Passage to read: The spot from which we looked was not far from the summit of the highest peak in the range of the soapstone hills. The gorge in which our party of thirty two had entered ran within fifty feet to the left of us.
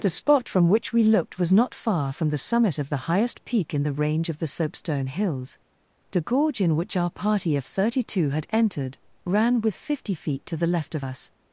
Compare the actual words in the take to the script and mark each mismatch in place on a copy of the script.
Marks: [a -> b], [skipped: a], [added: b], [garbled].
The spot from which we looked was not far from the summit of the highest peak in the range of the soapstone hills. The gorge in which our party of thirty two had entered ran [within -> with] fifty feet to the left of us.